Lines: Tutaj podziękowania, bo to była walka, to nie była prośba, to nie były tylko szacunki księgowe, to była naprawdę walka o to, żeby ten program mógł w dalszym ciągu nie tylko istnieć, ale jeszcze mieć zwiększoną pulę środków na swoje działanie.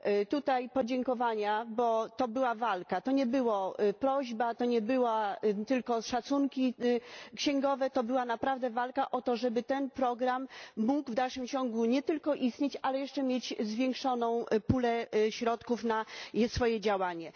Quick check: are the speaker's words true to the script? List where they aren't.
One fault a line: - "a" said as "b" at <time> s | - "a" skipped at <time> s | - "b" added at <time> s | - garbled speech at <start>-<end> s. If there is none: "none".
none